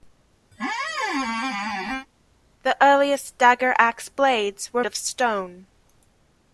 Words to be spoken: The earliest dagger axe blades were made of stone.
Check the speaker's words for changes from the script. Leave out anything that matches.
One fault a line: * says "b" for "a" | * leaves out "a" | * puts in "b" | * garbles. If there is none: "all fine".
* leaves out "made"